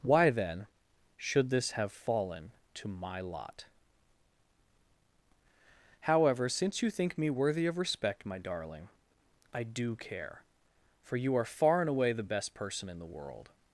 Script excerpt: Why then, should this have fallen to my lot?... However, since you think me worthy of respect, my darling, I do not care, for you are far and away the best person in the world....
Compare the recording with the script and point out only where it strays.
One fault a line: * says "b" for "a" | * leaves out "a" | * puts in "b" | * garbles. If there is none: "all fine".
* leaves out "not"